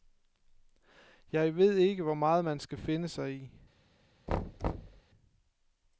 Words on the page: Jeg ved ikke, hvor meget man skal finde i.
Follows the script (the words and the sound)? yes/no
no